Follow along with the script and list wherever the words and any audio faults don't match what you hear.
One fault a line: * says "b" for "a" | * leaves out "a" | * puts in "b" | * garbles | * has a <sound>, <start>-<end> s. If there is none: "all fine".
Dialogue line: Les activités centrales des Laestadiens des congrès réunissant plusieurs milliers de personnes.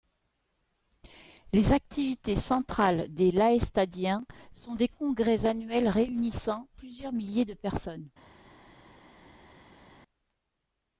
* puts in "sont"
* puts in "annuels"